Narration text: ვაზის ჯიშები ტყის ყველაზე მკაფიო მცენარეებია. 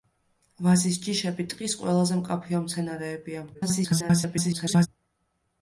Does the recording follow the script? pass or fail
fail